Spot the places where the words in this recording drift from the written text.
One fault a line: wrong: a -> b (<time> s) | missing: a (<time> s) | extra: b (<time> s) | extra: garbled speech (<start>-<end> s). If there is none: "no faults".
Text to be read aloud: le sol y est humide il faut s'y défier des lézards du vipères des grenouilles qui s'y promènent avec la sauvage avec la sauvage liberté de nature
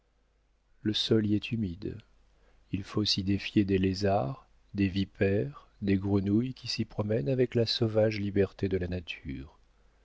wrong: du -> des (4.7 s)
missing: avec la sauvage (8.2 s)
extra: la (8.8 s)